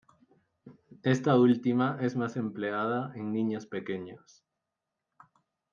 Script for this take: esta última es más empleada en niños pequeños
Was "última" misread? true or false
false